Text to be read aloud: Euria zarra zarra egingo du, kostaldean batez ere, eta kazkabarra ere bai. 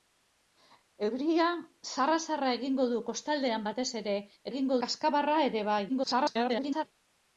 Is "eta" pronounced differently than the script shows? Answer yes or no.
yes